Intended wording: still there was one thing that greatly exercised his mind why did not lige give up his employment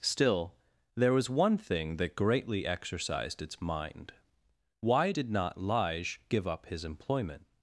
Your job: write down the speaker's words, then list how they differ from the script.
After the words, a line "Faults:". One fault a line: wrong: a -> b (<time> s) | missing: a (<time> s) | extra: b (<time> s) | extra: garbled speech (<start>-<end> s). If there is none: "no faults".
still there was one thing that greatly exercised its mind why did not lige give up his employment
Faults:
wrong: his -> its (3.4 s)